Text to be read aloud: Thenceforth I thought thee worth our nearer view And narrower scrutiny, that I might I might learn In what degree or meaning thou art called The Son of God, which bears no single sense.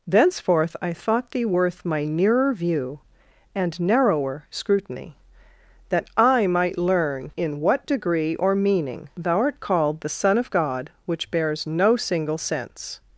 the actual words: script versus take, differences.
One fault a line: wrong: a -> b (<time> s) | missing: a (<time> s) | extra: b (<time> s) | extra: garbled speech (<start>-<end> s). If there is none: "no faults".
wrong: our -> my (1.9 s)
missing: I might (6.8 s)